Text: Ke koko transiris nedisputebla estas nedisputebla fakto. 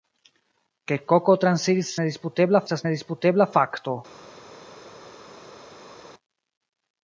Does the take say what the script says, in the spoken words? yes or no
yes